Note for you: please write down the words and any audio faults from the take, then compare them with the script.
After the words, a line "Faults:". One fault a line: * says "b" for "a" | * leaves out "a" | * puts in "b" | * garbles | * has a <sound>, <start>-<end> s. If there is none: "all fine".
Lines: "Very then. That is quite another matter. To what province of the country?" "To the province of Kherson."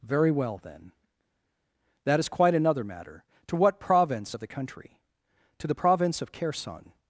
"Very well, then. That is quite another matter. To what province of the country?" "To the province of Kherson."
Faults:
* puts in "well"